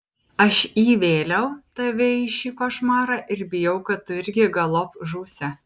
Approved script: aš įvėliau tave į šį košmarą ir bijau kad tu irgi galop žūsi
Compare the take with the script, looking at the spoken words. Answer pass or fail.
pass